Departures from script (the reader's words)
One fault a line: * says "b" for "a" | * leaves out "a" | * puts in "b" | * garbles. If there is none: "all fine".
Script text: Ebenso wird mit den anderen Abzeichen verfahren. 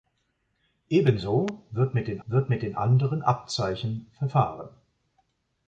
* puts in "wird mit den"